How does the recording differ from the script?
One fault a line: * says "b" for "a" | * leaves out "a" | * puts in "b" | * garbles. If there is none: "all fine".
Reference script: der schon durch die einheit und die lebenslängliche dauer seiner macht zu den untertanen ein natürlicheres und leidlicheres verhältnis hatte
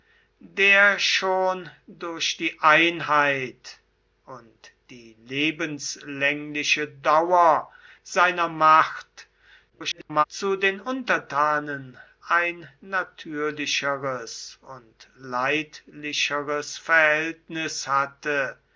* garbles